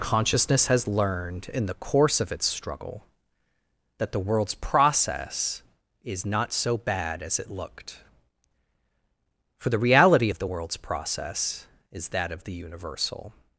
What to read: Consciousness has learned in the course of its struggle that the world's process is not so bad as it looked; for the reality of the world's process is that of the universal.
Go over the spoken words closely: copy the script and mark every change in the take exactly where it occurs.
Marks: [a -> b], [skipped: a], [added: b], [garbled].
Consciousness has learned in the course of its struggle that the world's process is not so bad as it looked; for the reality of the world's process is that of the universal.